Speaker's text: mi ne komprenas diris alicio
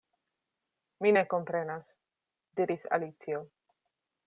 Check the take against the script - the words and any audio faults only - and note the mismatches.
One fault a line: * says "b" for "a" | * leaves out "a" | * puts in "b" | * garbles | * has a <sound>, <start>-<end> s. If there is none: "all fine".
all fine